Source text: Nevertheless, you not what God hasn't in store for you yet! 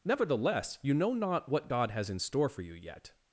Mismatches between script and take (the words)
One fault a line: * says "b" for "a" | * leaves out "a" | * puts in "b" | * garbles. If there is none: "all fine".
* puts in "know"
* says "has" for "hasn't"